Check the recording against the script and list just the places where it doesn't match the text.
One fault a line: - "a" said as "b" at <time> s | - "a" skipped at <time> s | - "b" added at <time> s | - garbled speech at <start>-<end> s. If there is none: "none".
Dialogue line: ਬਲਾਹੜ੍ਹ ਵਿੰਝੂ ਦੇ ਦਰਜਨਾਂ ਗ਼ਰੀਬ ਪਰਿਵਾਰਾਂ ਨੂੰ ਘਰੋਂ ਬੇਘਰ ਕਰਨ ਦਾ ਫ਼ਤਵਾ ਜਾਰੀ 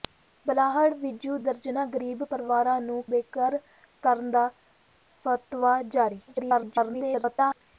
- "ਦੇ" skipped at 1.4 s
- "ਘਰੋਂ" skipped at 3.0 s
- garbled speech at 6.3-7.6 s